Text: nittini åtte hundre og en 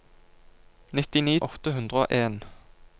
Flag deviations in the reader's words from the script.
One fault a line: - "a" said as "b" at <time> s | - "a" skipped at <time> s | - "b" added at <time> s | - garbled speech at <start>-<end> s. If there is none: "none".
none